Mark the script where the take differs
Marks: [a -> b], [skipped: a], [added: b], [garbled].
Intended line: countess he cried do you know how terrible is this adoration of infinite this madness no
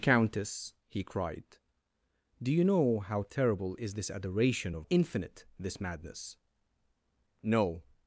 countess he cried do you know how terrible is this adoration of infinite this madness no